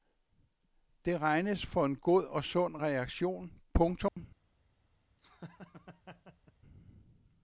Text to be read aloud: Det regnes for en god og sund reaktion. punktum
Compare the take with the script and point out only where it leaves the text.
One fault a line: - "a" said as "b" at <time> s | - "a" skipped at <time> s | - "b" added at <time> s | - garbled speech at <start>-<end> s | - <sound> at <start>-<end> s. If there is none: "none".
- dropout at 4.1-4.2 s
- laugh at 5.2-6.5 s